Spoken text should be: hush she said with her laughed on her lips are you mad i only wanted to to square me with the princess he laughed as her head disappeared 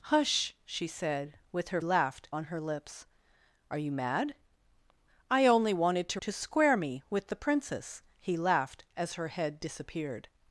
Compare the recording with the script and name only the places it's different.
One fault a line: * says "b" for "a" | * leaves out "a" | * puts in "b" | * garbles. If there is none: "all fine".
all fine